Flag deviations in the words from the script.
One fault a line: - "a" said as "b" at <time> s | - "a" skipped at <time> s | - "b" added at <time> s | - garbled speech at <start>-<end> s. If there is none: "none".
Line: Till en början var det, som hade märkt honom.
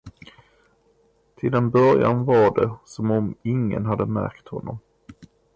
- "om ingen" added at 3.1 s